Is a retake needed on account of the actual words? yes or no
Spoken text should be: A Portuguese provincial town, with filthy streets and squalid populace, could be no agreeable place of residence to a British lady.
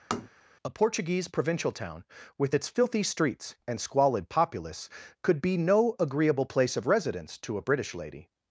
yes